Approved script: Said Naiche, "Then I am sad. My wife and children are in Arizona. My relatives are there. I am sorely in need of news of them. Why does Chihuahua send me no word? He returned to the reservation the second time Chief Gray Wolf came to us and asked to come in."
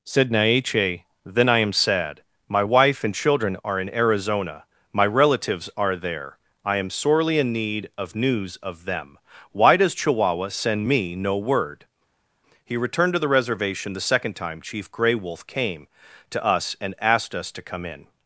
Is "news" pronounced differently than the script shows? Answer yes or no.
no